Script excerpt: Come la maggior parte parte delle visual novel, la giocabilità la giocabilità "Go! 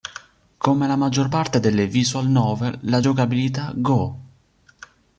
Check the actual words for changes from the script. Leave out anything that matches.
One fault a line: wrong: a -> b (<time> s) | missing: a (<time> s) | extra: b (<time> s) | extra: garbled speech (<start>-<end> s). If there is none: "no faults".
missing: parte (1.6 s)
missing: la giocabilità (3.7 s)